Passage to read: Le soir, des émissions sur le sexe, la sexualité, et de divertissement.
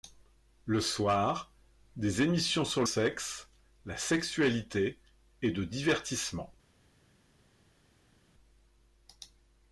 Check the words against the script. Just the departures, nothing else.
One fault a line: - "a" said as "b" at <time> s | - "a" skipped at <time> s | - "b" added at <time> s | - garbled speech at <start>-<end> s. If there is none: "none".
- "le" skipped at 2.8 s